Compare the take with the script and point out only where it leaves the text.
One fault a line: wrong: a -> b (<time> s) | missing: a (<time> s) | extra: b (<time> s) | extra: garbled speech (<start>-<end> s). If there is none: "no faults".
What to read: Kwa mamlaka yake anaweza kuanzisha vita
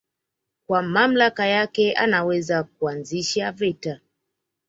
no faults